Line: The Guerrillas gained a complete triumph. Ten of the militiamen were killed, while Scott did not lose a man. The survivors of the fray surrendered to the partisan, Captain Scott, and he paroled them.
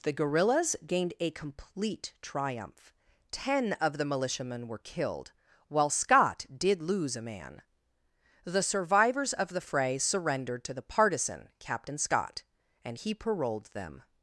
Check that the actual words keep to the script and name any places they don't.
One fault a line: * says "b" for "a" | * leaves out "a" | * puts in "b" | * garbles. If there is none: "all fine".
* leaves out "not"